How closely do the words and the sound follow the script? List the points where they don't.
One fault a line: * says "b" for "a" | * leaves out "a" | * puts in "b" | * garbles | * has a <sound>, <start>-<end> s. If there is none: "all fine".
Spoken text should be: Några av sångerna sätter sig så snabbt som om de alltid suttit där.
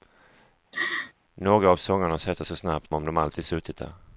* has a laugh, 0.7-1.1 s
* leaves out "sig"
* leaves out "som"